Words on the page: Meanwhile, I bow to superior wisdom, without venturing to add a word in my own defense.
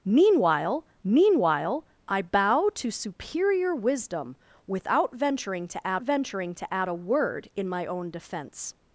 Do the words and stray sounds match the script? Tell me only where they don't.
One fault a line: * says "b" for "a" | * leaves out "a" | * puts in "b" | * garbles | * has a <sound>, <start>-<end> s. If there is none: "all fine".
* puts in "meanwhile"
* puts in "venturing to add"